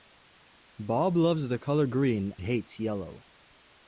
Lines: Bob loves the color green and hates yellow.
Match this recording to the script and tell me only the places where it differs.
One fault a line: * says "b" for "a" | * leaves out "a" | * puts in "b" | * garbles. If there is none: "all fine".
* leaves out "and"